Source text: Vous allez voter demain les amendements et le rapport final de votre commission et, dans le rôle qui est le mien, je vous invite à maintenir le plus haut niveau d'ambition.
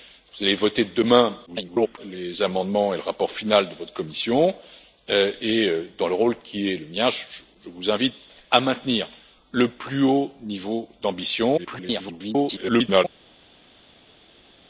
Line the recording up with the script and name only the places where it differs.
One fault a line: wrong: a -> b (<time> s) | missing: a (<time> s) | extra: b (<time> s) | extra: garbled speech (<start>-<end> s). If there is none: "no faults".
extra: garbled speech (1.5-2.0 s)
extra: garbled speech (11.6-13.1 s)